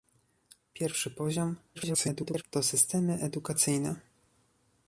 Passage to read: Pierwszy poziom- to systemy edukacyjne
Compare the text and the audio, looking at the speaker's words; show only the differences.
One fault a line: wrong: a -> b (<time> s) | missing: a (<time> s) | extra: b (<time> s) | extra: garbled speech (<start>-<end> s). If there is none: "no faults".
extra: garbled speech (1.7-2.4 s)